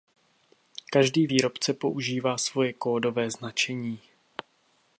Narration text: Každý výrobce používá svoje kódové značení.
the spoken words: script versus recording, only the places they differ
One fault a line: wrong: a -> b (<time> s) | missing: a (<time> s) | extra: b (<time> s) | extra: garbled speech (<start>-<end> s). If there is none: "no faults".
no faults